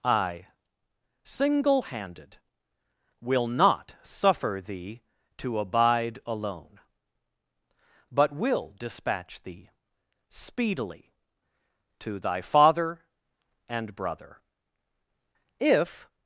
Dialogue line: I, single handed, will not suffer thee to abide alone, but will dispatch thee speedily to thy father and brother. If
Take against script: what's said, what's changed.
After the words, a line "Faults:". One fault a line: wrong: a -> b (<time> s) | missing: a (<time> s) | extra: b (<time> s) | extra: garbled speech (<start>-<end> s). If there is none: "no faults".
I, single handed, will not suffer thee to abide alone, but will dispatch thee speedily to thy father and brother. If
Faults:
no faults